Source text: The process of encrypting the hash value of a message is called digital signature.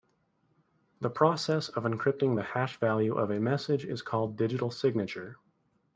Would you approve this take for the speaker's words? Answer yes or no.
yes